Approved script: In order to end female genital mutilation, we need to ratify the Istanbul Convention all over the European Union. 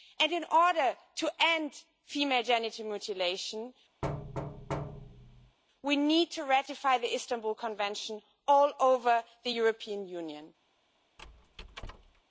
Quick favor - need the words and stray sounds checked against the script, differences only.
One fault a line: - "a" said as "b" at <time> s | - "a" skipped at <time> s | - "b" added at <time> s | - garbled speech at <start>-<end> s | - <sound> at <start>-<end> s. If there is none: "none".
- thud at 4.0-5.6 s
- squeak at 11.2-12.2 s